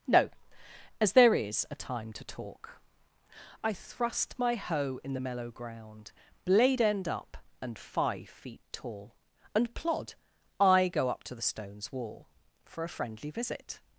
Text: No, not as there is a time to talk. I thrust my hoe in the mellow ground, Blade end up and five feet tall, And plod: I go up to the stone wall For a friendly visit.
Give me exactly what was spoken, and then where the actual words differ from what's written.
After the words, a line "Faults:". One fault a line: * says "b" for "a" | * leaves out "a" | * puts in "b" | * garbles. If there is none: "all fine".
No, as there is a time to talk. I thrust my hoe in the mellow ground, Blade end up and five feet tall, And plod: I go up to the stones wall For a friendly visit.
Faults:
* leaves out "not"
* says "stones" for "stone"